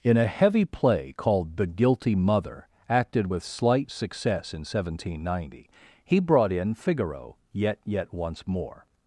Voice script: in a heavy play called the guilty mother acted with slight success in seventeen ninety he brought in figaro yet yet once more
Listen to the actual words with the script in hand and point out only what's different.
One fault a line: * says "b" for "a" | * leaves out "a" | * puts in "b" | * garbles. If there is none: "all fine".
all fine